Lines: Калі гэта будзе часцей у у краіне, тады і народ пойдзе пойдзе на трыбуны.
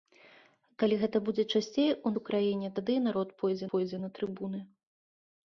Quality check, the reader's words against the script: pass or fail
pass